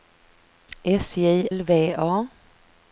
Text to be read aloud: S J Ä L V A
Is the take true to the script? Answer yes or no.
no